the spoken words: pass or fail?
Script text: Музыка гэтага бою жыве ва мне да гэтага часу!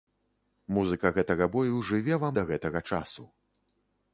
fail